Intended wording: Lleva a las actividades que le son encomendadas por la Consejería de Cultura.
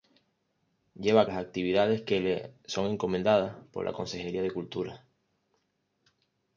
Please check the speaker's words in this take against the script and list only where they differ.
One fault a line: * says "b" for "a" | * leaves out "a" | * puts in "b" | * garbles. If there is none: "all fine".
all fine